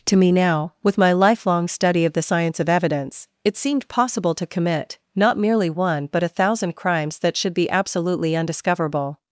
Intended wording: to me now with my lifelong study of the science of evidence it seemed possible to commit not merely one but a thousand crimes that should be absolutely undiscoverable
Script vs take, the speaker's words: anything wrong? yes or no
no